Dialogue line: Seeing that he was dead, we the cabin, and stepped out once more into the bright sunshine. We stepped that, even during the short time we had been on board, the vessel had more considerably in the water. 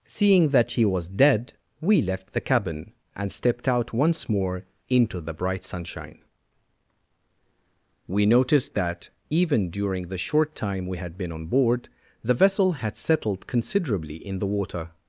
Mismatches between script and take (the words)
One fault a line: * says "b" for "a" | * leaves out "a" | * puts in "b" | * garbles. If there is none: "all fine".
* puts in "left"
* says "noticed" for "stepped"
* says "settled" for "more"